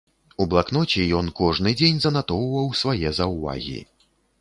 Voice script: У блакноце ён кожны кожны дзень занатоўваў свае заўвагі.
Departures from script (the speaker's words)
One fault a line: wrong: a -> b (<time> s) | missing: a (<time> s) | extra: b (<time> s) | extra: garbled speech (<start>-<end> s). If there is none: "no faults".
missing: кожны (1.8 s)